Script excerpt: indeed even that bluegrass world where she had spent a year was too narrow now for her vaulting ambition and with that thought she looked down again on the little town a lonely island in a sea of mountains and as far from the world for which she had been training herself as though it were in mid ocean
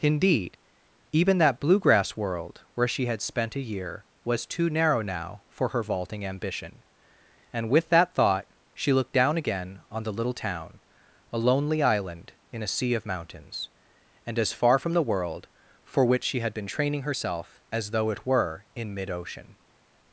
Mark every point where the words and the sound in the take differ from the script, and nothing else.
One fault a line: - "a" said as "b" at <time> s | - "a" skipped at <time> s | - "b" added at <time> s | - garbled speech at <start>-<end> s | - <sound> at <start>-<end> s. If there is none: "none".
none